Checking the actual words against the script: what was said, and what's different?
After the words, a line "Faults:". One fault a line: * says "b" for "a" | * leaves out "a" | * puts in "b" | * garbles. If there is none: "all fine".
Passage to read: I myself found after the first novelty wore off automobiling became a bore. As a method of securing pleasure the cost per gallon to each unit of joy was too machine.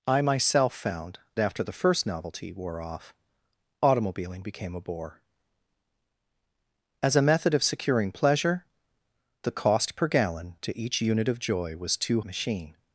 I myself found after the first novelty wore off automobiling became a bore. As a method of securing pleasure the cost per gallon to each unit of joy was too machine.
Faults:
all fine